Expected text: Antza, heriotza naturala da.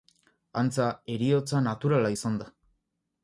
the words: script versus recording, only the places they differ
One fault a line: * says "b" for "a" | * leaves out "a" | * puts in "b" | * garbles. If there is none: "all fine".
* puts in "izan"